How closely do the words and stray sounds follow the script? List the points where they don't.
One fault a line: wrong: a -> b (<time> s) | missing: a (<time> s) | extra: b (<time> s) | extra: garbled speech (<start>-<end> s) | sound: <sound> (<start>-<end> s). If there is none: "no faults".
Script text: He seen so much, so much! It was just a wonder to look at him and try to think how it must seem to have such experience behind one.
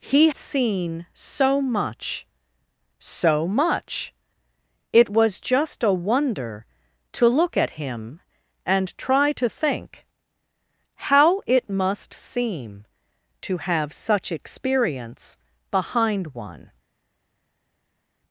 no faults